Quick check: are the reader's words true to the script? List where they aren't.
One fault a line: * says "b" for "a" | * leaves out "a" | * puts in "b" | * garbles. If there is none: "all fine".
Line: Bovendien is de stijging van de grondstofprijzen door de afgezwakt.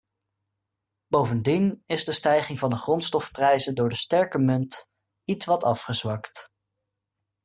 * puts in "sterke munt ietwat"